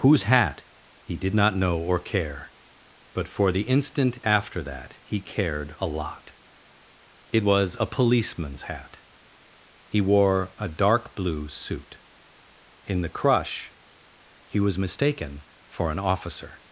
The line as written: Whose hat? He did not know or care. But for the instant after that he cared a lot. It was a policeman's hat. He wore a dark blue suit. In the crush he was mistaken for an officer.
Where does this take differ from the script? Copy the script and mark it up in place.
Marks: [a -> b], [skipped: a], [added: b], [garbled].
Whose hat? He did not know or care. But for the instant after that he cared a lot. It was a policeman's hat. He wore a dark blue suit. In the crush he was mistaken for an officer.